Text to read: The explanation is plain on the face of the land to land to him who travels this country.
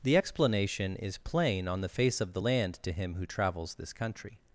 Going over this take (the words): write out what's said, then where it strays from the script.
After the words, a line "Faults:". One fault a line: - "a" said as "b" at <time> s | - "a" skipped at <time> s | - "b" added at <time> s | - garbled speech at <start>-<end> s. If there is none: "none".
The explanation is plain on the face of the land to him who travels this country.
Faults:
- "land to" skipped at 2.9 s